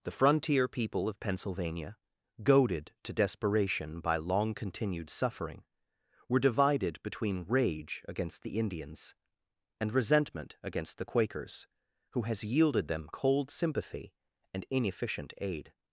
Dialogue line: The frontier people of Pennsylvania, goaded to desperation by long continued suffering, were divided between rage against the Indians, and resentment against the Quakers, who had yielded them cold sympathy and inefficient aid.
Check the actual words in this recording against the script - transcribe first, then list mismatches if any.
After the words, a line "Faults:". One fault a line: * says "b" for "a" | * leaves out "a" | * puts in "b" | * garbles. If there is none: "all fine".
The frontier people of Pennsylvania, goaded to desperation by long continued suffering, were divided between rage against the Indians, and resentment against the Quakers, who has yielded them cold sympathy and inefficient aid.
Faults:
* says "has" for "had"